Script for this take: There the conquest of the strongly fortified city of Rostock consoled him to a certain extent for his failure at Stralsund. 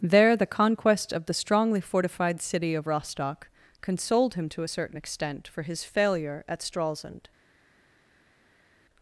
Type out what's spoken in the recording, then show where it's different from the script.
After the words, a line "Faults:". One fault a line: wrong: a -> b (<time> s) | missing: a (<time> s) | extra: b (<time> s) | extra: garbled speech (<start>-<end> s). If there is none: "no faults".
There the conquest of the strongly fortified city of Rostock consoled him to a certain extent for his failure at Stralsund.
Faults:
no faults